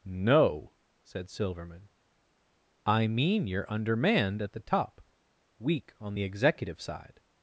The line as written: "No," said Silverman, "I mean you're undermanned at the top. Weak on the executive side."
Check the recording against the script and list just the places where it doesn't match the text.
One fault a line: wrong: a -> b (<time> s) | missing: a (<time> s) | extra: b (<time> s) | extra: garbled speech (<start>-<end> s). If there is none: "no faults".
no faults